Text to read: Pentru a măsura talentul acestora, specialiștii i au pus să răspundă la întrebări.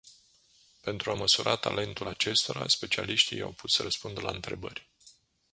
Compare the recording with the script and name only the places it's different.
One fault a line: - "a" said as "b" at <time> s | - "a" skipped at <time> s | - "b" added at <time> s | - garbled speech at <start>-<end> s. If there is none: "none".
none